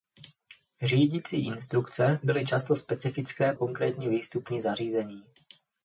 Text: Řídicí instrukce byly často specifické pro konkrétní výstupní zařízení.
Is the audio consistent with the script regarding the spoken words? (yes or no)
no